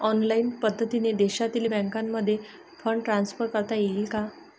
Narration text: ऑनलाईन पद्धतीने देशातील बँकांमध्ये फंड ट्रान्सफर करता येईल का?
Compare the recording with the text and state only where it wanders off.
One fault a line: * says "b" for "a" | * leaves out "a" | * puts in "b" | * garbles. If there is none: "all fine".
all fine